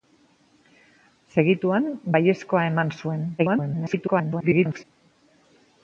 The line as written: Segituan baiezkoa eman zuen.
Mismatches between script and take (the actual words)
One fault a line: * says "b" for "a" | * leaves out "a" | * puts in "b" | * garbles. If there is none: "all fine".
* garbles